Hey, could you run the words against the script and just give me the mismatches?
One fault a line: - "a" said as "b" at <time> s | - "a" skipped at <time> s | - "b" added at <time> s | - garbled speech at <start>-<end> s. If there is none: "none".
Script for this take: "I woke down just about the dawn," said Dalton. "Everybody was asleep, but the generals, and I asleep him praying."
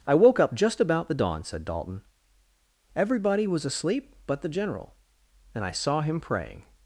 - "down" said as "up" at 0.4 s
- "generals" said as "general" at 4.5 s
- "asleep" said as "saw" at 5.7 s